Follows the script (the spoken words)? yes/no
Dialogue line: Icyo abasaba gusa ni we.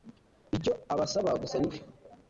yes